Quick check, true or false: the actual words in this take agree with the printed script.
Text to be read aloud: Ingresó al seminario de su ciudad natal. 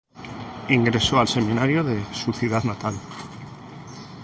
true